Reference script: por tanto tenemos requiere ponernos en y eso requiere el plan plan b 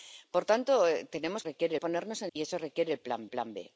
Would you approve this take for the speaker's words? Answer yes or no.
yes